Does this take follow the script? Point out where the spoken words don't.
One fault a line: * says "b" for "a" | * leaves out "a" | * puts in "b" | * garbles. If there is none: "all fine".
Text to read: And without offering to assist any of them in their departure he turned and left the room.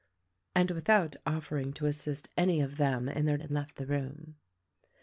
* leaves out "departure he turned"